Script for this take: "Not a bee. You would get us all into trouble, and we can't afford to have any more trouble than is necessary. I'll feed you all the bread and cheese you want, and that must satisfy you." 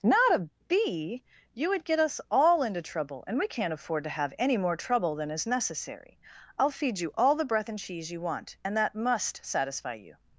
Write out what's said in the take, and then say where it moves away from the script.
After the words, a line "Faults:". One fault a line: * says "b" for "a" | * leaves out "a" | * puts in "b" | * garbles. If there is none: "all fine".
"Not a bee. You would get us all into trouble, and we can't afford to have any more trouble than is necessary. I'll feed you all the breath and cheese you want, and that must satisfy you."
Faults:
* says "breath" for "bread"